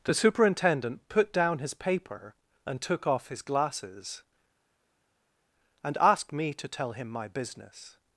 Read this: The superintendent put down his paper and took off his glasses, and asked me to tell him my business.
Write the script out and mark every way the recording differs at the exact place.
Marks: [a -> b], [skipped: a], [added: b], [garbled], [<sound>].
The superintendent put down his paper and took off his glasses, and asked me to tell him my business.